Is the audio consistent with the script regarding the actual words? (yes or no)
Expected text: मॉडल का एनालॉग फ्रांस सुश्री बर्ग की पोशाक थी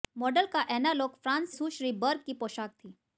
yes